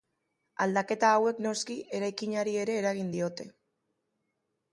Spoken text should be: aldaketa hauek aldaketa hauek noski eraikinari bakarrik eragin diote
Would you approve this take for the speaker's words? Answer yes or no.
no